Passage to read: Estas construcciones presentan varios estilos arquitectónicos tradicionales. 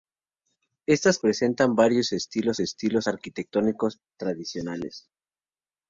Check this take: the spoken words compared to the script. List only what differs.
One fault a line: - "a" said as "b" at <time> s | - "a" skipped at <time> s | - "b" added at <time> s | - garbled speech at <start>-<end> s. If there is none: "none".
- "construcciones" skipped at 1.2 s
- "estilos" added at 2.6 s